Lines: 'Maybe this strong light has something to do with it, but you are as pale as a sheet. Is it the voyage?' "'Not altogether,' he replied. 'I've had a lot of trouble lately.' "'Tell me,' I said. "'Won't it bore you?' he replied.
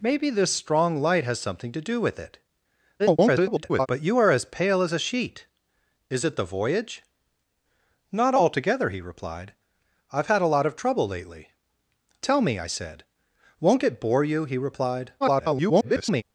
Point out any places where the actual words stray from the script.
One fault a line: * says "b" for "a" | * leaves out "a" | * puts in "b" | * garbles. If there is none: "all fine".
* garbles
* garbles